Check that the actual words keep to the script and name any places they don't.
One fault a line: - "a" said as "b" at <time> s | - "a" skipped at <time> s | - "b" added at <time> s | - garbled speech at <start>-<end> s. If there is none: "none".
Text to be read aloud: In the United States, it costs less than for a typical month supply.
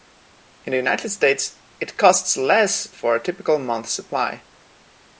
- "than" skipped at 2.9 s